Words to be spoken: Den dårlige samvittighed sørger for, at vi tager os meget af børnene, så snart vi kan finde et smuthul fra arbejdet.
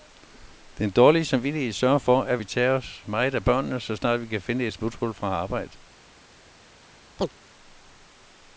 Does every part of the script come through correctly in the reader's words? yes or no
yes